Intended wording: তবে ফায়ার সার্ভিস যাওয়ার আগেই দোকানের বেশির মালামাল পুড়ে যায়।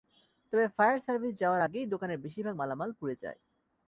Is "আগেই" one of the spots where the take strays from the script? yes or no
no